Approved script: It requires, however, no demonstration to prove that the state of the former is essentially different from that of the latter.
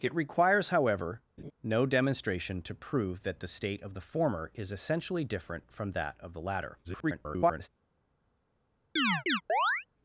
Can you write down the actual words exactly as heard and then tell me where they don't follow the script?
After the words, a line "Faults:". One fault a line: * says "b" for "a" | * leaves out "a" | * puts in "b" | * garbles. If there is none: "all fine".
It requires, however, no demonstration to prove that the state of the former is essentially different from that of the latter. [garbled]
Faults:
* garbles